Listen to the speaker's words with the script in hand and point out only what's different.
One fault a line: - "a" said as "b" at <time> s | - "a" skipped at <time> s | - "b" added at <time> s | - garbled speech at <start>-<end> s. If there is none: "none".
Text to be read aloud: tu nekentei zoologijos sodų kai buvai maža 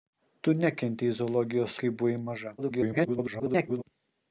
- "sodų" skipped at 1.8 s
- garbled speech at 2.6-3.8 s